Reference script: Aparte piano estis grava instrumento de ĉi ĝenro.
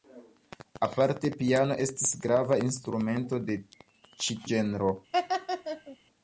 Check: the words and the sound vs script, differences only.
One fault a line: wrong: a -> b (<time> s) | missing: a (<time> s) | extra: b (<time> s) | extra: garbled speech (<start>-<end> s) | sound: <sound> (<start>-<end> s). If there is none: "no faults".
sound: laugh (5.1-6.0 s)